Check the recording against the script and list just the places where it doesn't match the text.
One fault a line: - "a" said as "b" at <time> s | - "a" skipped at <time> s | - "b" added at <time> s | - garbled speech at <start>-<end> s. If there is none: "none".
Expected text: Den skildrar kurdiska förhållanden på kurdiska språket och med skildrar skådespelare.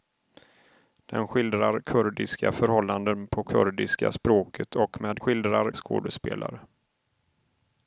none